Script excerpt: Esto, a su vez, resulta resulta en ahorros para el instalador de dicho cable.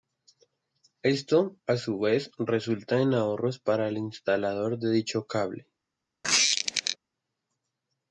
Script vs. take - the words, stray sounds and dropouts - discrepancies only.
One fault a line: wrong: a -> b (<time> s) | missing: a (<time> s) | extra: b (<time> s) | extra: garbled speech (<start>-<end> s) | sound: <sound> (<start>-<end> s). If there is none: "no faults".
missing: resulta (3.0 s)
sound: squeak (6.2-7.0 s)